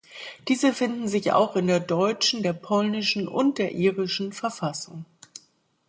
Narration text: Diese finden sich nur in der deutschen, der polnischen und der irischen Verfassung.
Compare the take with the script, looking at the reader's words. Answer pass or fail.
fail